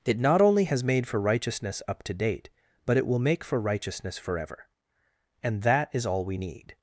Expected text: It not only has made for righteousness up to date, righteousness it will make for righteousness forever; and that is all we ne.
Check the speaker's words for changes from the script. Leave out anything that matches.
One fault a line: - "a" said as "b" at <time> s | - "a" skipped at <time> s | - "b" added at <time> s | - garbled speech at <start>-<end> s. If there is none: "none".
- "righteousness" said as "but" at 2.9 s
- "ne" said as "need" at 6.4 s